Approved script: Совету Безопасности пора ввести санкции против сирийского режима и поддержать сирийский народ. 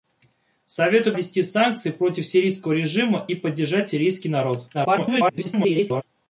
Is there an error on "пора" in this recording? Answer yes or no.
yes